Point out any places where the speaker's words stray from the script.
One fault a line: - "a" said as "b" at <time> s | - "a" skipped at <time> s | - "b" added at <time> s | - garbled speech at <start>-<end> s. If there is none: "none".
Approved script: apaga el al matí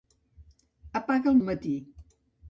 none